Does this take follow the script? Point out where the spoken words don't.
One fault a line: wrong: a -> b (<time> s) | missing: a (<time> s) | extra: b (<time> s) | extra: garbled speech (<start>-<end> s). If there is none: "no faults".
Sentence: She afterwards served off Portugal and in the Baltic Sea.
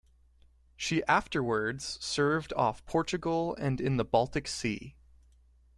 no faults